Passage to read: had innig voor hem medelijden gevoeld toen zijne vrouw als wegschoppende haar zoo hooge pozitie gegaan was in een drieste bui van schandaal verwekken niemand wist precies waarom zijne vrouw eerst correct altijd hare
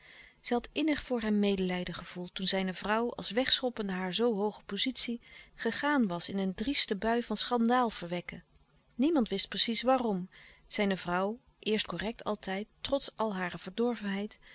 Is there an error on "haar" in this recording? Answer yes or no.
no